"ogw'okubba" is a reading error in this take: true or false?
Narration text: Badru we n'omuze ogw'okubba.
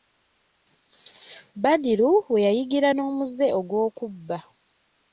false